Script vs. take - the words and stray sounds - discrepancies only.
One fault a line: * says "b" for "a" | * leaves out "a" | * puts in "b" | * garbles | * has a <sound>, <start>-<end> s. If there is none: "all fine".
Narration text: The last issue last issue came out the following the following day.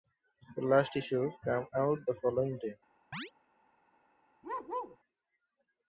* leaves out "last issue"
* leaves out "the following"
* has a chirp, 3.1-3.3 s
* has a bark, 4.4-5.0 s